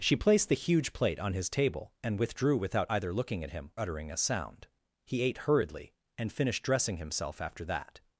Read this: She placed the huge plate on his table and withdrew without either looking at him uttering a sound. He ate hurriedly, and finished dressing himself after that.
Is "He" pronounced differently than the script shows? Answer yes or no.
no